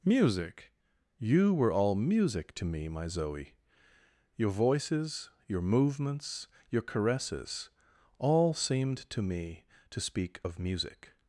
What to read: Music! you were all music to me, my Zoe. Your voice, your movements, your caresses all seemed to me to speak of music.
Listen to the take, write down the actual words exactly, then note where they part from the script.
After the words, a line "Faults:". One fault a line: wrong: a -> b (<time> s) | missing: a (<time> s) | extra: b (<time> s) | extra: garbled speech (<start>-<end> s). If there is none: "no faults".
Music! you were all music to me, my Zoe. Your voices, your movements, your caresses all seemed to me to speak of music.
Faults:
wrong: voice -> voices (4.5 s)